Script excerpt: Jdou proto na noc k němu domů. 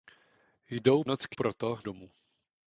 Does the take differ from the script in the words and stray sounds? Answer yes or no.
yes